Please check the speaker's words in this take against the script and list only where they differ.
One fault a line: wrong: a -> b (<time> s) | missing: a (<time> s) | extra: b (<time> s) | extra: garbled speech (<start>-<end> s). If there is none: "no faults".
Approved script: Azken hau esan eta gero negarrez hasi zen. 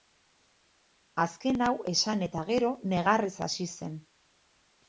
no faults